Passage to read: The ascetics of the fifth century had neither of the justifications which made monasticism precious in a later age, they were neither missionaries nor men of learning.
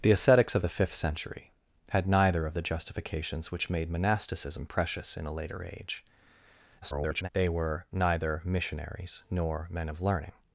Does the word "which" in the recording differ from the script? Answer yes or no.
no